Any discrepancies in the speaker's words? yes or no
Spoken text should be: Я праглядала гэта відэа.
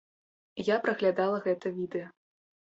no